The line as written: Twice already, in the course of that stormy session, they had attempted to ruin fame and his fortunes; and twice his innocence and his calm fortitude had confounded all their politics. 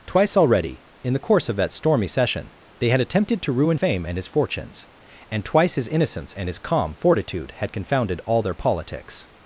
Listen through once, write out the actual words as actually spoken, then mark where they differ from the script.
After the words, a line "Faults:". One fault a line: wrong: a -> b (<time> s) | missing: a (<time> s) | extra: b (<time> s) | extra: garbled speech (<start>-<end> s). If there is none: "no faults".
Twice already, in the course of that stormy session, they had attempted to ruin fame and his fortunes; and twice his innocence and his calm fortitude had confounded all their politics.
Faults:
no faults